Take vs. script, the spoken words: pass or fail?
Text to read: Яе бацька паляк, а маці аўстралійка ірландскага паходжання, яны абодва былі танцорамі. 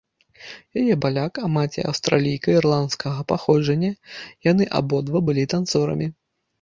fail